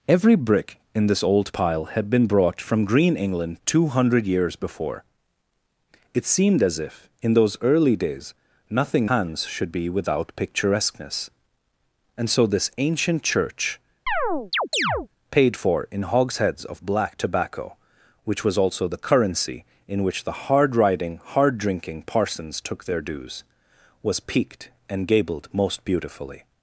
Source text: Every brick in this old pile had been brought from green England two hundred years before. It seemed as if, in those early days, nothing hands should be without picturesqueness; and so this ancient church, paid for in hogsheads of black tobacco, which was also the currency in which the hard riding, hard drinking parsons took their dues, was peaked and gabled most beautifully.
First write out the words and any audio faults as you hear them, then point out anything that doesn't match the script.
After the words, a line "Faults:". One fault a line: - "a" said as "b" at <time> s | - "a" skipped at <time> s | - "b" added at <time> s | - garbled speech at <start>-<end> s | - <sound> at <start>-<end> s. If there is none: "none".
Every brick in this old pile had been brought from green England two hundred years before. It seemed as if, in those early days, nothing hands should be without picturesqueness; and so this ancient church, paid for in hogsheads of black tobacco, which was also the currency in which the hard riding, hard drinking parsons took their dues, was peaked and gabled most beautifully.
Faults:
- chirp at 14.1-15.1 s